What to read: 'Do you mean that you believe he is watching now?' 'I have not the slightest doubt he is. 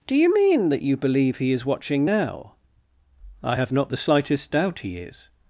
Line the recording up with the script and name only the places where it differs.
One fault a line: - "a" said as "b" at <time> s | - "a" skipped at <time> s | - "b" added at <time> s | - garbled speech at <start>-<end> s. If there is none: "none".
none